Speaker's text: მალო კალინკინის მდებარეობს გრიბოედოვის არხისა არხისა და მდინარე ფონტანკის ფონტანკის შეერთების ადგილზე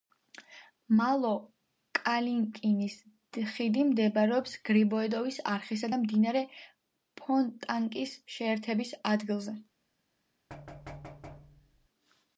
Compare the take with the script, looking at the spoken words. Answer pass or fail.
fail